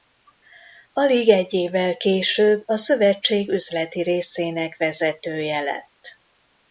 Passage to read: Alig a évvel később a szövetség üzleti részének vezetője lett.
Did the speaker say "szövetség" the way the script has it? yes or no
yes